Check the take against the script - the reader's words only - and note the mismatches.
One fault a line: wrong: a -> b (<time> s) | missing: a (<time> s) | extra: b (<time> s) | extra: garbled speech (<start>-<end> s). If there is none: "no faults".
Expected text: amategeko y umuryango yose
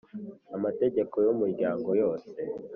no faults